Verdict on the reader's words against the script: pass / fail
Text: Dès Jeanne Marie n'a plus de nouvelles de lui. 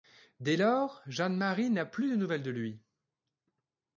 fail